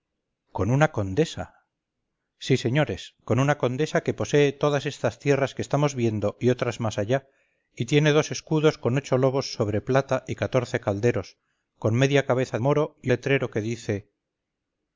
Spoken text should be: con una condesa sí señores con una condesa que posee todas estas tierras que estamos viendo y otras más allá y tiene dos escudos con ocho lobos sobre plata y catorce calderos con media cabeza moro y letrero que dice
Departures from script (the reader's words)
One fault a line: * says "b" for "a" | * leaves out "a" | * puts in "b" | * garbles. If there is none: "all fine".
all fine